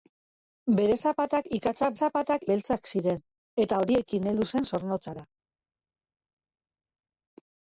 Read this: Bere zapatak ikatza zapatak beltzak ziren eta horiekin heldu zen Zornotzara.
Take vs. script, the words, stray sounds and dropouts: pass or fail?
pass